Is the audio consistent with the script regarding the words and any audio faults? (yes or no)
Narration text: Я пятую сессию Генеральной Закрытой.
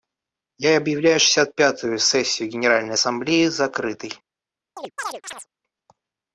no